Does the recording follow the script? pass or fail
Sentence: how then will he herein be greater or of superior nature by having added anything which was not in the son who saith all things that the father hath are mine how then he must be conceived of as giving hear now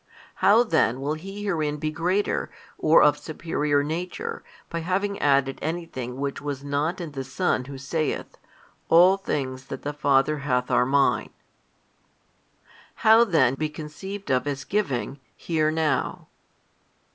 fail